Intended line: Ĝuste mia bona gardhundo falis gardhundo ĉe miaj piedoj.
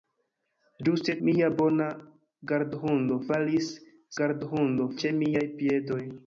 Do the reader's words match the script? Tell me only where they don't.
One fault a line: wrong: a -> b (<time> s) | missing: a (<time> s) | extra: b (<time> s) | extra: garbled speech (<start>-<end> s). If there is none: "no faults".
no faults